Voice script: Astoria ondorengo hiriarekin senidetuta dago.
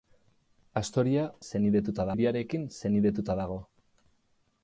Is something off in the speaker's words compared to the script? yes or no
yes